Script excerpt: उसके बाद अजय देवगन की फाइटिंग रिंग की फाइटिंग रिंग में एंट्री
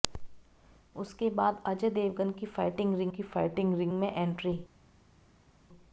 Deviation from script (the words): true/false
false